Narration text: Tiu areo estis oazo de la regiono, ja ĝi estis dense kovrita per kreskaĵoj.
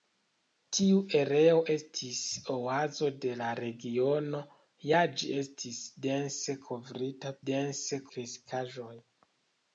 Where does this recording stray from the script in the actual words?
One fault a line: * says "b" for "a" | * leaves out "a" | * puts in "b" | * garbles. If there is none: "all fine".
* says "dense" for "per"